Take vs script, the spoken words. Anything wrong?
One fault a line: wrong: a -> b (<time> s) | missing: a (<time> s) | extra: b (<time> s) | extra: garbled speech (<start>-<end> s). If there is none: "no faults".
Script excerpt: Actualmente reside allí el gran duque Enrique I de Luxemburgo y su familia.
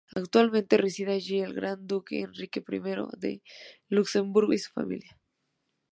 no faults